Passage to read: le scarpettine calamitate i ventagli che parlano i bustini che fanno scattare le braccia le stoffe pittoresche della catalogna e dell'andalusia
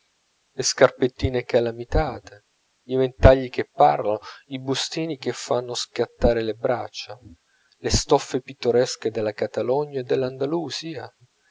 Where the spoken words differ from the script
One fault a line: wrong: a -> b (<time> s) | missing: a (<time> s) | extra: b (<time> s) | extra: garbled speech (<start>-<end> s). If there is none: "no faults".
no faults